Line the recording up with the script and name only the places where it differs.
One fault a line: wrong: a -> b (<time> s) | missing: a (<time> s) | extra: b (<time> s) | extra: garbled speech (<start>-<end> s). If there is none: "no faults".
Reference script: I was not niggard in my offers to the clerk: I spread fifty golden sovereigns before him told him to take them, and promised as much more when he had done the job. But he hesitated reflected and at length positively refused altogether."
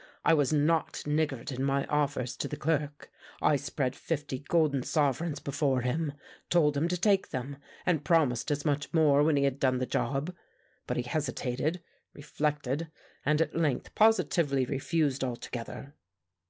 no faults